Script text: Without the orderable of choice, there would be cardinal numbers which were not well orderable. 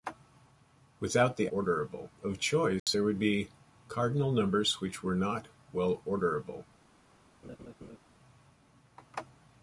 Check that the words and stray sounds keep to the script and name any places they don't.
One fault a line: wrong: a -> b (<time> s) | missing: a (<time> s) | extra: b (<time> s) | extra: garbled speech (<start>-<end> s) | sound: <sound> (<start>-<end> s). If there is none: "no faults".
sound: dropout (2.8-2.9 s)
sound: laugh (7.4-8.0 s)